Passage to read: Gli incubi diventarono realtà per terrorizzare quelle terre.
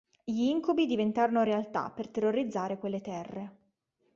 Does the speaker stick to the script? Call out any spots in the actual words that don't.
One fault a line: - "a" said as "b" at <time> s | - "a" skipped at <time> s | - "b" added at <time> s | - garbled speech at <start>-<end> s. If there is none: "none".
none